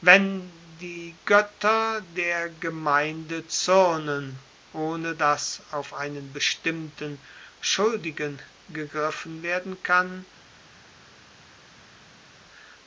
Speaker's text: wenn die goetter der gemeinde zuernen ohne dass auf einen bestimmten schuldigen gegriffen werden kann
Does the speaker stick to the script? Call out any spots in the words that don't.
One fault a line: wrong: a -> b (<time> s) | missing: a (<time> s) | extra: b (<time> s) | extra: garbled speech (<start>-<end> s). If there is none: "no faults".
no faults